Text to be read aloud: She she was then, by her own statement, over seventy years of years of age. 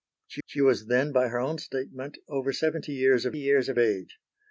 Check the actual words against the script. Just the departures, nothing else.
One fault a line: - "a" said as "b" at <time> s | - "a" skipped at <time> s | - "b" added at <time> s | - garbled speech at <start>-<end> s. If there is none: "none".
none